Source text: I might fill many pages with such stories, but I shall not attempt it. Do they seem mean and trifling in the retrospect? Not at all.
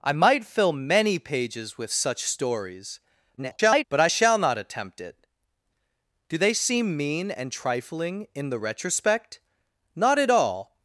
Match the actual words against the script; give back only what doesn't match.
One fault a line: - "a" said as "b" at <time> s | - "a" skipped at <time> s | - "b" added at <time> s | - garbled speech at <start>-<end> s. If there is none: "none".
- garbled speech at 3.4-3.8 s